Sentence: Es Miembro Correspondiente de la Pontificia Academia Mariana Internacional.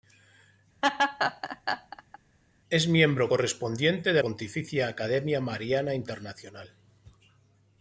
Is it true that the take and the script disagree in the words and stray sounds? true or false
true